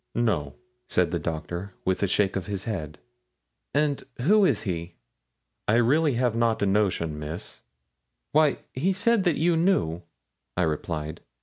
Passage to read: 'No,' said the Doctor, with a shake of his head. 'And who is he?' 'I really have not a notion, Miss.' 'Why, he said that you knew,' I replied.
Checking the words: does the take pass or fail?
pass